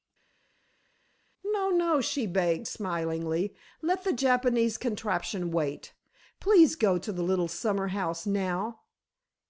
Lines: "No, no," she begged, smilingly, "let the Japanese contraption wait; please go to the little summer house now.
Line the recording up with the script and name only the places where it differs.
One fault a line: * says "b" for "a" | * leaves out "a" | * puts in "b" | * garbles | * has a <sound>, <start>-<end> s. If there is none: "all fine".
all fine